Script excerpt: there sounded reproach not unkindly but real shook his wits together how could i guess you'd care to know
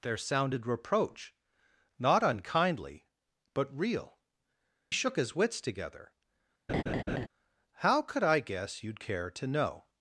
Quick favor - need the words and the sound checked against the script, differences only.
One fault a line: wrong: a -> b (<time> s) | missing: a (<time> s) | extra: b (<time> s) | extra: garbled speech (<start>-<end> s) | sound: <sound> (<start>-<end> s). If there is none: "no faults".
sound: laugh (6.7-7.3 s)